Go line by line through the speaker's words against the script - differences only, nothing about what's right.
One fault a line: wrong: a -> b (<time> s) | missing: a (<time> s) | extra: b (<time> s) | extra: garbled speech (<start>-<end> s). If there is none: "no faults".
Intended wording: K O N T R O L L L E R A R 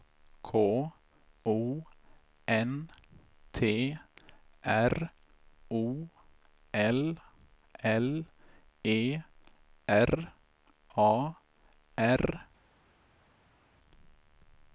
missing: L (8.2 s)